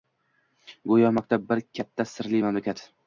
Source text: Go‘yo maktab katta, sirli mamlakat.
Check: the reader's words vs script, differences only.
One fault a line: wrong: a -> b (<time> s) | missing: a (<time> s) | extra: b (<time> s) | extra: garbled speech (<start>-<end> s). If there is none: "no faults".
extra: bir (1.5 s)